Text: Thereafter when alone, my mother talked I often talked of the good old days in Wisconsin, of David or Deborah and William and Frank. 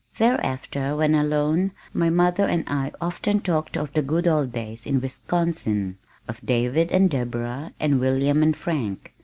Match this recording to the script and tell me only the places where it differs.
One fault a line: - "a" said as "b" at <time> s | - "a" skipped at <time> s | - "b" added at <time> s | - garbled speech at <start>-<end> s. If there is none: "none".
- "talked" said as "and" at 2.5 s
- "or" said as "and" at 6.9 s